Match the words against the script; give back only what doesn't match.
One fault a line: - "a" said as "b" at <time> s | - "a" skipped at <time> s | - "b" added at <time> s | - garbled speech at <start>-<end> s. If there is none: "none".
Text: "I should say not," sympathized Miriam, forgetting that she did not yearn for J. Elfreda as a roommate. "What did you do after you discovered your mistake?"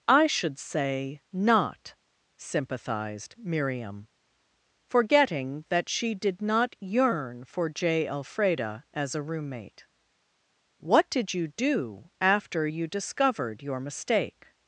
none